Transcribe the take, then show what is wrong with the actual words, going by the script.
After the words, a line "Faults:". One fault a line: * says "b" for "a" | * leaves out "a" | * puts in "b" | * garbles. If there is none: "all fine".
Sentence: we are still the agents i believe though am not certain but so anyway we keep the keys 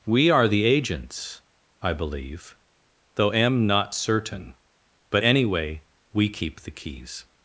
we are the agents i believe though am not certain but anyway we keep the keys
Faults:
* leaves out "still"
* leaves out "so"